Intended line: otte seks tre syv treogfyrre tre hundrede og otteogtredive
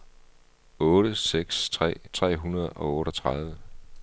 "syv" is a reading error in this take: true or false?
true